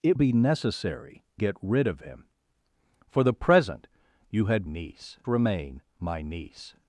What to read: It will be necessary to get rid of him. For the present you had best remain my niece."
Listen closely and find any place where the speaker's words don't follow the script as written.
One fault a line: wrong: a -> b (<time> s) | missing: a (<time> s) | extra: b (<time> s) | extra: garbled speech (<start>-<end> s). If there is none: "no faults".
missing: will (0.2 s)
missing: to (1.2 s)
wrong: best -> niece (4.7 s)